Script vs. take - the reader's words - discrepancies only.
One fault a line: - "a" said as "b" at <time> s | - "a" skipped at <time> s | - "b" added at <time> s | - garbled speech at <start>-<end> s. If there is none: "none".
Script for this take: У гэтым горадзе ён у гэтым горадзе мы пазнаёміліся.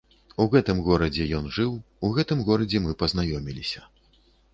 - "жыў" added at 1.6 s